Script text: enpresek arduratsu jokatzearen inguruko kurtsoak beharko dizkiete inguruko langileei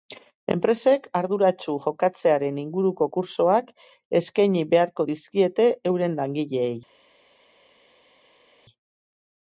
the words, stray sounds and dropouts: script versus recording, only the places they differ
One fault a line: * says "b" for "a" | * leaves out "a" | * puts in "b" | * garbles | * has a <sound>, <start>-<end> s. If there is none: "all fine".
* puts in "eskaini"
* says "euren" for "inguruko"